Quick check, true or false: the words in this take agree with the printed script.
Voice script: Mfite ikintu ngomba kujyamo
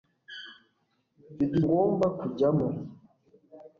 false